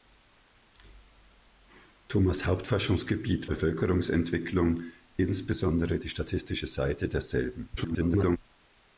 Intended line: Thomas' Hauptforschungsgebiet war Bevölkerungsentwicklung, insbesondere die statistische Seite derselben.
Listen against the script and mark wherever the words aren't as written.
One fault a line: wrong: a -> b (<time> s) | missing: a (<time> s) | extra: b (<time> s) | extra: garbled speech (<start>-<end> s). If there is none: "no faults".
missing: war (3.5 s)
extra: garbled speech (7.8-8.4 s)